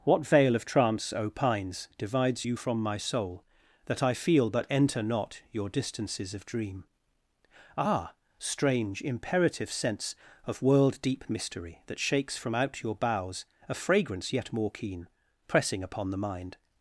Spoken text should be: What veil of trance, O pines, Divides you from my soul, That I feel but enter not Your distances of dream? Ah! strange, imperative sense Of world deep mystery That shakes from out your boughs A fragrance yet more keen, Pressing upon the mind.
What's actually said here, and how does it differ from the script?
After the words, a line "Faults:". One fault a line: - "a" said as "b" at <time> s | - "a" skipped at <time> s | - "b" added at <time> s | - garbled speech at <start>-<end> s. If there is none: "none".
What veil of trance, O pines, Divides you from my soul, That I feel but enter not Your distances of dream? Ah! strange, imperative sense Of world deep mystery That shakes from out your boughs A fragrance yet more keen, Pressing upon the mind.
Faults:
none